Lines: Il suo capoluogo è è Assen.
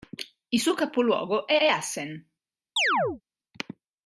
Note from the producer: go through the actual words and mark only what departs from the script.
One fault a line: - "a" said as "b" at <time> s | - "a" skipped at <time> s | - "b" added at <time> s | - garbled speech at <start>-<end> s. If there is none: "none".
none